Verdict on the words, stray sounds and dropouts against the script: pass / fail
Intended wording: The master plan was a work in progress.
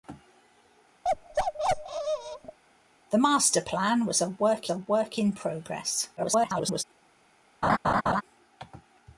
fail